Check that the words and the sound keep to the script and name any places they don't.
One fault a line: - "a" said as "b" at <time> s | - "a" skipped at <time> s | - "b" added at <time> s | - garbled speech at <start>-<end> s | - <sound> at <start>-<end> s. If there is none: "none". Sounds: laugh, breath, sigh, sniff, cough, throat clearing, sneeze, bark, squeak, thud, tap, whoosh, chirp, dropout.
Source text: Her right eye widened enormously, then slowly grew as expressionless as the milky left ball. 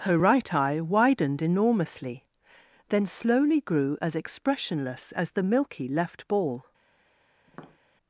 - tap at 7.5-7.8 s